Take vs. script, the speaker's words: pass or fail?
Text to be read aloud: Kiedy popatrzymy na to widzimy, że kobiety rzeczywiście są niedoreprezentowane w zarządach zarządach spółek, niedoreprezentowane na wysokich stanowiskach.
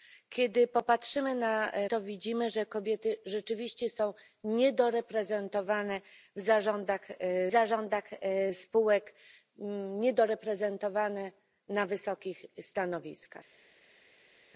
pass